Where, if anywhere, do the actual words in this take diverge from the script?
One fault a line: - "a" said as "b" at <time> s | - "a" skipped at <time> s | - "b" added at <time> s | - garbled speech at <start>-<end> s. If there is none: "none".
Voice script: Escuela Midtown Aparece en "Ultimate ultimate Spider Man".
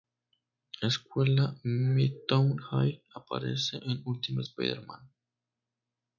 - "High" added at 2.6 s
- "ultimate" skipped at 4.5 s